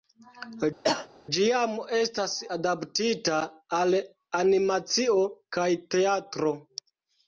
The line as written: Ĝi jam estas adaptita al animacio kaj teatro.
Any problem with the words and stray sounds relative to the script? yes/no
yes